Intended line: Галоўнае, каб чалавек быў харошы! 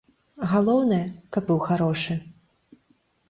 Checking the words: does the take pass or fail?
fail